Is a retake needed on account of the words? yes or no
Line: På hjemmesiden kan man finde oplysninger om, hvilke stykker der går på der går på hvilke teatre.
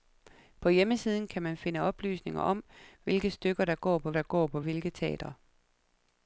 no